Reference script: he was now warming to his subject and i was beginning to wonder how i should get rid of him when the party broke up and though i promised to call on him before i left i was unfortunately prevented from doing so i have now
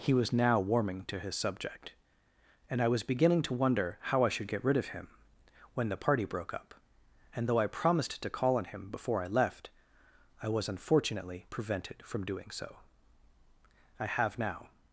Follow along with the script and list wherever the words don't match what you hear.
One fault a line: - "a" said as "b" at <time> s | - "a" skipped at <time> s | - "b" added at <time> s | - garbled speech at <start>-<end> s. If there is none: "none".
none